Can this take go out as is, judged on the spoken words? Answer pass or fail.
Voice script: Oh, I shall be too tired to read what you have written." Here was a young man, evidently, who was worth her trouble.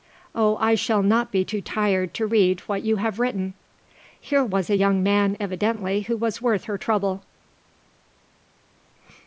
fail